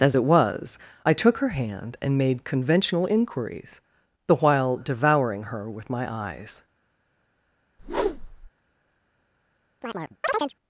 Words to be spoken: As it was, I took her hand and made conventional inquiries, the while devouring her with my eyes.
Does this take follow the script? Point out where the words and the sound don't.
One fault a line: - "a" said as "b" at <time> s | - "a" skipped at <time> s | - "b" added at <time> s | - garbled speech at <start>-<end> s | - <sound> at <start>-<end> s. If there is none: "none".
- whoosh at 7.8-8.5 s
- chirp at 9.8-10.5 s